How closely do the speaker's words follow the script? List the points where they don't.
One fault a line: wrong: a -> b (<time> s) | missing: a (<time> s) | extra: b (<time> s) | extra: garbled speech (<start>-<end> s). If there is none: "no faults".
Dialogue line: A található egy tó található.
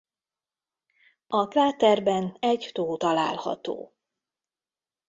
wrong: található -> kráterben (1.5 s)